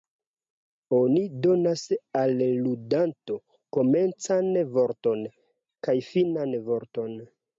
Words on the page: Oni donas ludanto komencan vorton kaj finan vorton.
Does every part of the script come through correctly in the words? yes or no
no